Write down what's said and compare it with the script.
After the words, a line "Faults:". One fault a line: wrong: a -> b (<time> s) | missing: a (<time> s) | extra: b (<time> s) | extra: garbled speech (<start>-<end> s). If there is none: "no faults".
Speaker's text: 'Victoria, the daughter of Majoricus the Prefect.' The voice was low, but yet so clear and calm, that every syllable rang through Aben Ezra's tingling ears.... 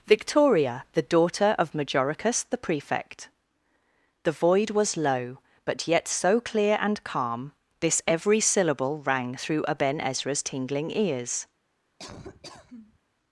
'Victoria, the daughter of Majoricus the Prefect.' The void was low, but yet so clear and calm, this every syllable rang through Aben Ezra's tingling ears....
Faults:
wrong: voice -> void (4.3 s)
wrong: that -> this (7.8 s)